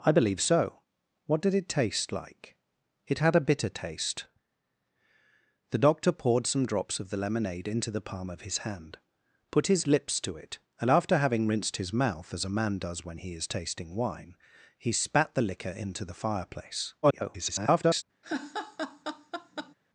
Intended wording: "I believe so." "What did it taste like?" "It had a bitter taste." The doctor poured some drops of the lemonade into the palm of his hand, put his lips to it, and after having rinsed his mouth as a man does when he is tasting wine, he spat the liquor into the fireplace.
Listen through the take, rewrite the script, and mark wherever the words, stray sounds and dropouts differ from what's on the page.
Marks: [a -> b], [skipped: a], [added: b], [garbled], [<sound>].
"I believe so." "What did it taste like?" "It had a bitter taste." The doctor poured some drops of the lemonade into the palm of his hand, put his lips to it, and after having rinsed his mouth as a man does when he is tasting wine, he spat the liquor into the fireplace. [garbled] [laugh]